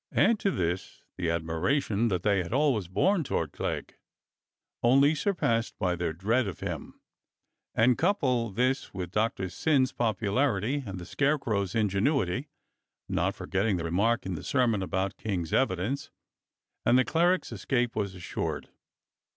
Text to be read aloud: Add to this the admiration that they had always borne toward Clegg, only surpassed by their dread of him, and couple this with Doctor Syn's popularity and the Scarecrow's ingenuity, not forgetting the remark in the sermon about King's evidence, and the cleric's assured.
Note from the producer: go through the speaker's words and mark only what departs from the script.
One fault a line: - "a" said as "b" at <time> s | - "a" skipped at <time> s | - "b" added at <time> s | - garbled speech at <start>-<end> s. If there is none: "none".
- "escape was" added at 17.5 s